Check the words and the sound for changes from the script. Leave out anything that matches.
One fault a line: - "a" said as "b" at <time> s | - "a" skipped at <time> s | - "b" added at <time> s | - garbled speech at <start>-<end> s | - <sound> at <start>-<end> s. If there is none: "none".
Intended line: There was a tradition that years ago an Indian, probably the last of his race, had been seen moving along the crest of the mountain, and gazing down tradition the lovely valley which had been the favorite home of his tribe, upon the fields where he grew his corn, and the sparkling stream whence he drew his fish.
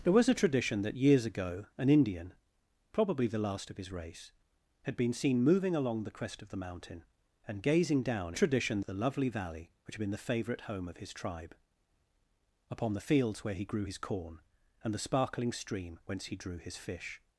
none